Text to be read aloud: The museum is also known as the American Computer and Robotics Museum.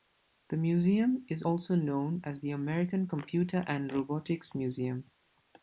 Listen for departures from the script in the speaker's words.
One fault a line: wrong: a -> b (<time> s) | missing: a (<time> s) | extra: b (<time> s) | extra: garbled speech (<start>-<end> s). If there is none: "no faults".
no faults